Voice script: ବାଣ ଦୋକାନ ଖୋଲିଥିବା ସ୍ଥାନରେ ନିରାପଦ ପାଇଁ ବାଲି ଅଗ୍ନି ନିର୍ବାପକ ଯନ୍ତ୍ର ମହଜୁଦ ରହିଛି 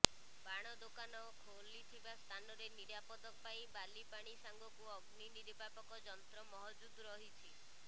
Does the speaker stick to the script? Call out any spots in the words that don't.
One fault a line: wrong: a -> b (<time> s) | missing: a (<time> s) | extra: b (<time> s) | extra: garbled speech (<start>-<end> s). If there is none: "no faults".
extra: ପାଣି ସାଙ୍ଗକୁ (4.1 s)